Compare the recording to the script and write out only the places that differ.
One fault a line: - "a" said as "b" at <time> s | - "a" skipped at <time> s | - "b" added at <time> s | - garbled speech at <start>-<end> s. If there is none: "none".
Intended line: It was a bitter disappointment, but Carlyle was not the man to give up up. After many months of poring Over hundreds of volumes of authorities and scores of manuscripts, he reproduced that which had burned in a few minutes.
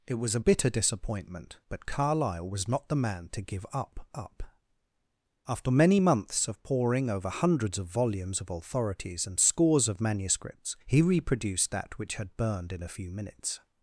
none